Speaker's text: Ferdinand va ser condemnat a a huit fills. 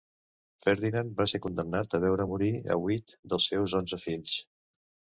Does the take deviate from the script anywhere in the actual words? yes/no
yes